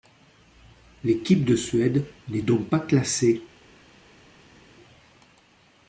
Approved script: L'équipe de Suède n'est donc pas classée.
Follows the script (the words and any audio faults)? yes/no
yes